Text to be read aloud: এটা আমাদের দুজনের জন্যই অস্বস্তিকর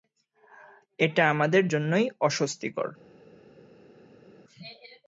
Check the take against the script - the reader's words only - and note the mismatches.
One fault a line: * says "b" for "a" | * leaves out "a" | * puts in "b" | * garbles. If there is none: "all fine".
* leaves out "দুজনের"